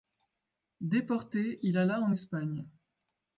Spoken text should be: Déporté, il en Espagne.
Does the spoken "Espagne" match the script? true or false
true